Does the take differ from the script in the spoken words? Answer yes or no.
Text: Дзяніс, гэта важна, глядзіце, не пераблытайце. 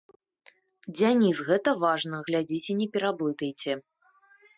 no